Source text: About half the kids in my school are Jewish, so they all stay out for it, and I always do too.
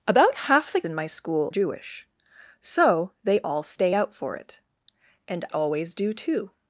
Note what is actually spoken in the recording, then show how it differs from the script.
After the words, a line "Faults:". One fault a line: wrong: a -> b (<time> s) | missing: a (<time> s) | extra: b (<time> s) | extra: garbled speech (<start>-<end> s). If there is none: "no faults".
About half the in my school Jewish, so they all stay out for it, and always do too.
Faults:
missing: kids (0.8 s)
missing: are (1.5 s)
missing: I (5.5 s)